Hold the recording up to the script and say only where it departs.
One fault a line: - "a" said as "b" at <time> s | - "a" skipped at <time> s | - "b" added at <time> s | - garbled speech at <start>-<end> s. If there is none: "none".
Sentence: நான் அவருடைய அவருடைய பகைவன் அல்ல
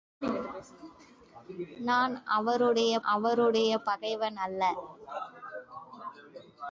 none